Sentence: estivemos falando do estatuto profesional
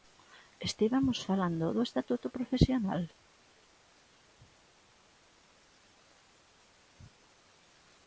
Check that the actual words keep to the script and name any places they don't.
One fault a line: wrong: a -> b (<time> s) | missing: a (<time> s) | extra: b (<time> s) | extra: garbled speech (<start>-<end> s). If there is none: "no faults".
no faults